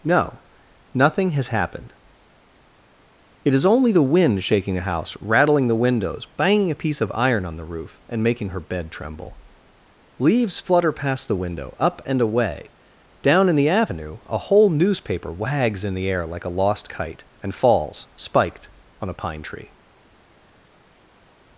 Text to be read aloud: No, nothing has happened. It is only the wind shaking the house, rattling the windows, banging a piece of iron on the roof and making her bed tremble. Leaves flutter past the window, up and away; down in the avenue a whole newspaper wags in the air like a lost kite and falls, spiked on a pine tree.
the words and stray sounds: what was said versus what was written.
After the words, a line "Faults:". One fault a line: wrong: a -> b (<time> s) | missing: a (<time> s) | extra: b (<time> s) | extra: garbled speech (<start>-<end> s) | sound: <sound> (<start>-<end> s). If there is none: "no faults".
No, nothing has happened. It is only the wind shaking the house, rattling the windows, banging a piece of iron on the roof and making her bed tremble. Leaves flutter past the window, up and away; down in the avenue a whole newspaper wags in the air like a lost kite and falls, spiked on a pine tree.
Faults:
no faults